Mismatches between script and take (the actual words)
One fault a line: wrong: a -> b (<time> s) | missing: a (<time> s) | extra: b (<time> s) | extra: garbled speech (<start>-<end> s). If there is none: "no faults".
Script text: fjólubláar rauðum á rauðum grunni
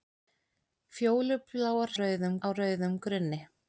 no faults